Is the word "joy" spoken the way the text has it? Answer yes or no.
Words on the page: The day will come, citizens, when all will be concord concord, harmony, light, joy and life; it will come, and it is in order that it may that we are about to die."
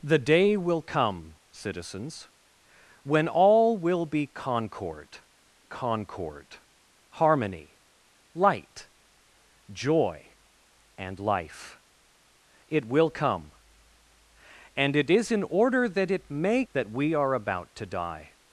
yes